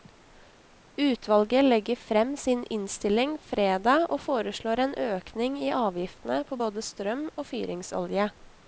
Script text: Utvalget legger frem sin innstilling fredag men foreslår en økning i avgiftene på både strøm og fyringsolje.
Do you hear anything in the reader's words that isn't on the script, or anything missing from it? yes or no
yes